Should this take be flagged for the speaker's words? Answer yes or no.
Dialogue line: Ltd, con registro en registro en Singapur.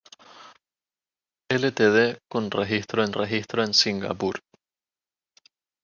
no